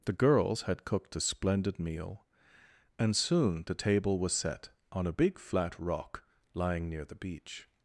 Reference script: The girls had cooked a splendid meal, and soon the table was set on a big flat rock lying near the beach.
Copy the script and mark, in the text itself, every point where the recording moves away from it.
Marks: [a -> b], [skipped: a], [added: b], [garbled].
The girls had cooked a splendid meal, and soon the table was set on a big flat rock lying near the beach.